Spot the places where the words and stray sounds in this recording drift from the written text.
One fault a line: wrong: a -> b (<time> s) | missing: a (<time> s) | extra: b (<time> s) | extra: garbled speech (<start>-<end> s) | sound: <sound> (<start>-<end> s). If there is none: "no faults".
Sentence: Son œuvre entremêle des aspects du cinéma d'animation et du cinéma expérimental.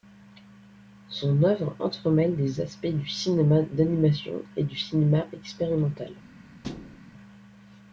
sound: thud (6.6-7.0 s)